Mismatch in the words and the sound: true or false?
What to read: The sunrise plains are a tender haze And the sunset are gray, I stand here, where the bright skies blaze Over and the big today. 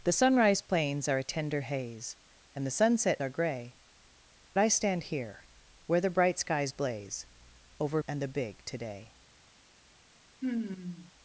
true